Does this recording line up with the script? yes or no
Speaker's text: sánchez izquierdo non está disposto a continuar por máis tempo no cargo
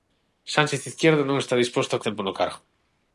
no